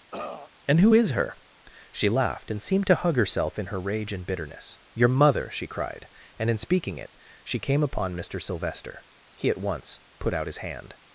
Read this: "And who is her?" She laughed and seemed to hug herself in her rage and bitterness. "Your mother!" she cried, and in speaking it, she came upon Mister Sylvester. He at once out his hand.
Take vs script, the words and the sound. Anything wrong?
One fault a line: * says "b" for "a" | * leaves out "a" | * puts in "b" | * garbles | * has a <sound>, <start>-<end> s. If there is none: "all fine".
* has a throat clearing, 0.1-0.5 s
* puts in "put"